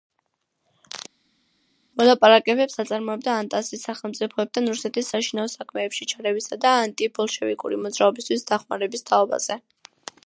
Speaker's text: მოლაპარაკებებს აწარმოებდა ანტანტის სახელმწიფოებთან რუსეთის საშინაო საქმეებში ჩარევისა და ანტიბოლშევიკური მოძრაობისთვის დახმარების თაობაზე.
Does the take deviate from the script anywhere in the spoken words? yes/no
no